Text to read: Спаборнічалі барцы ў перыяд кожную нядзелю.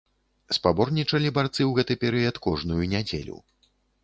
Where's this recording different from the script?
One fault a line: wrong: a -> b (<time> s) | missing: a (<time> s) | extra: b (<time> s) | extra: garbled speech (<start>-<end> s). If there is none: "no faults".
extra: гэты (1.8 s)